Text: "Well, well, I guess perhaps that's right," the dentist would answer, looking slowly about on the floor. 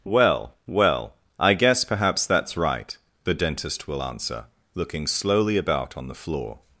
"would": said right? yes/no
no